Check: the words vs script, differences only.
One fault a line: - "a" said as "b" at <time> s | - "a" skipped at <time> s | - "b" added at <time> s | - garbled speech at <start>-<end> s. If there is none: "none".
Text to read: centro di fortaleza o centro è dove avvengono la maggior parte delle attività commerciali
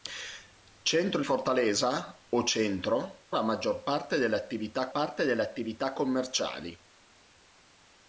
- "di" skipped at 1.2 s
- "è dove avvengono la maggior" said as "la maggior parte delle attività" at 3.3 s